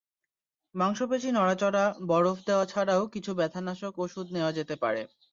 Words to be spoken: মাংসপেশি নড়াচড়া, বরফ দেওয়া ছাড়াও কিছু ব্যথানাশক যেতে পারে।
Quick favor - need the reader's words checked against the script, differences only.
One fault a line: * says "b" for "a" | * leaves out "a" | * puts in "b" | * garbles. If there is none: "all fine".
* puts in "ওষুধ নেওয়া"